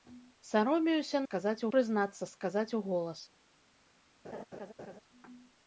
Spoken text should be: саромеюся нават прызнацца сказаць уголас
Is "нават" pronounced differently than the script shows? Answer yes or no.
yes